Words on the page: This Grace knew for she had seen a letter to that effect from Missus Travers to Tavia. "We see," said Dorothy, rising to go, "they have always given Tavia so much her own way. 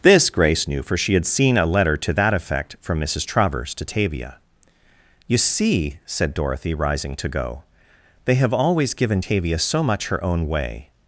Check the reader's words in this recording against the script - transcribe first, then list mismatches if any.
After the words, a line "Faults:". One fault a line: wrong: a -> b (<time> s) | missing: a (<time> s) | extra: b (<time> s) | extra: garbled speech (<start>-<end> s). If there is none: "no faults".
This Grace knew for she had seen a letter to that effect from Missus Travers to Tavia. "You see," said Dorothy, rising to go, "they have always given Tavia so much her own way.
Faults:
wrong: We -> You (5.3 s)